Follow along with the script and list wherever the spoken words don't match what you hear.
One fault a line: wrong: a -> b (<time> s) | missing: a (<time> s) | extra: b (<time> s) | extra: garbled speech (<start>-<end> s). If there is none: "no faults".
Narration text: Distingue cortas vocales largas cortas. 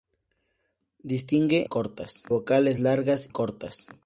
no faults